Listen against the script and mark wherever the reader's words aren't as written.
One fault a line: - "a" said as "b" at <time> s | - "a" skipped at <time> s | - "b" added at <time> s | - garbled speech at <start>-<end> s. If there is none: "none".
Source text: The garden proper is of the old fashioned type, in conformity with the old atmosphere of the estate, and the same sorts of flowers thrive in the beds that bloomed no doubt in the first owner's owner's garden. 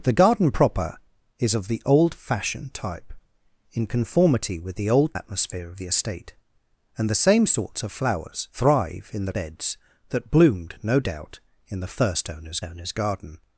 none